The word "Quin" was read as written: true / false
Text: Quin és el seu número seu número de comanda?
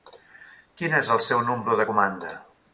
true